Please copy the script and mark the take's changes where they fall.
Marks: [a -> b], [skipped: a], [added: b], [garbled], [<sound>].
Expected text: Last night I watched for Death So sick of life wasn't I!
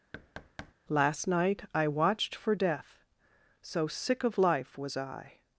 [thud] Last night I watched for Death So sick of life [wasn't -> was] I!